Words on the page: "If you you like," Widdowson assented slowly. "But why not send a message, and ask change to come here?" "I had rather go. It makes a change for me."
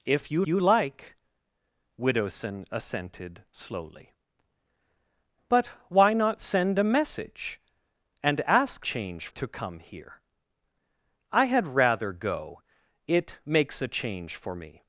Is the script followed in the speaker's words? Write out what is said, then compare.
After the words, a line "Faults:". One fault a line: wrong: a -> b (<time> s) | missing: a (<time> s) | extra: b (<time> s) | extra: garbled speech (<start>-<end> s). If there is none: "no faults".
"If you you like," Widdowson assented slowly. "But why not send a message, and ask change to come here?" "I had rather go. It makes a change for me."
Faults:
no faults